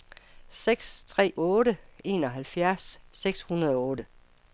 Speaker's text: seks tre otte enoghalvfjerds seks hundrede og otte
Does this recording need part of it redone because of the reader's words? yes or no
no